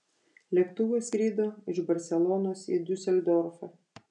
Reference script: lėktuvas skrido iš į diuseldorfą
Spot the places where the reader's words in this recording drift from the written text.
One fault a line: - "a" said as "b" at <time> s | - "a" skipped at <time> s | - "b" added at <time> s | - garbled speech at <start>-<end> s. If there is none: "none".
- "barselonos" added at 1.9 s